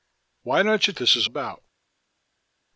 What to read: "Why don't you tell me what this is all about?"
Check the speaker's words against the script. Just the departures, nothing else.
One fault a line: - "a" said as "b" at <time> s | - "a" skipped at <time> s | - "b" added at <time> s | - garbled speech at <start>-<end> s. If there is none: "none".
- "tell me what" skipped at 0.9 s
- "all" skipped at 1.3 s